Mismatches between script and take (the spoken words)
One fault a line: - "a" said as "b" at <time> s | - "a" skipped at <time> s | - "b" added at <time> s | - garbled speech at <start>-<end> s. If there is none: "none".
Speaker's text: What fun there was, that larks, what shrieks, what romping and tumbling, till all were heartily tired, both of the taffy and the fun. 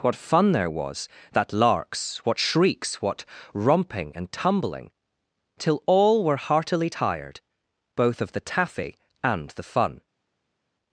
none